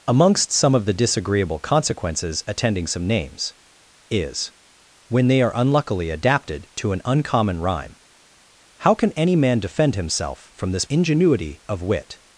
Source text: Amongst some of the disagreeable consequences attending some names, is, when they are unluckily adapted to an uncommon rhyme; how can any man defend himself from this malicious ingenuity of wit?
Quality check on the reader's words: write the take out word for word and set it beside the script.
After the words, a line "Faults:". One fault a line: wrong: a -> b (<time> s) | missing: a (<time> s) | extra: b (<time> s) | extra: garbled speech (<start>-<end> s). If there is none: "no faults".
Amongst some of the disagreeable consequences attending some names, is, when they are unluckily adapted to an uncommon rhyme; how can any man defend himself from this ingenuity of wit?
Faults:
missing: malicious (10.9 s)